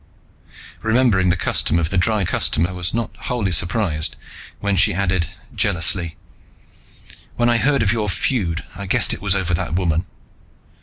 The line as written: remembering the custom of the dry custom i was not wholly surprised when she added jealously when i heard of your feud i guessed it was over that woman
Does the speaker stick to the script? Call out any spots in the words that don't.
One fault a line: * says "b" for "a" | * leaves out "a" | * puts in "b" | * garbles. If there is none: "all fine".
all fine